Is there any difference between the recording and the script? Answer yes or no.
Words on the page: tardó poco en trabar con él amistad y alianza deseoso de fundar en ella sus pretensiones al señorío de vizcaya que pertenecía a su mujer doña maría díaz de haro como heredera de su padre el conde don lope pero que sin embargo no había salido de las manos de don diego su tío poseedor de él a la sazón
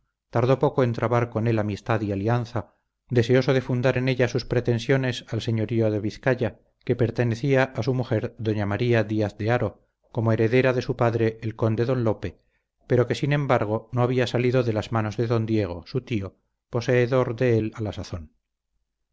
no